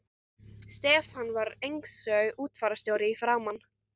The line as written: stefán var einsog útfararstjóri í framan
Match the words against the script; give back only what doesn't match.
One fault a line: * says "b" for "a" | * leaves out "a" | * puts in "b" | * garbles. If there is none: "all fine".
all fine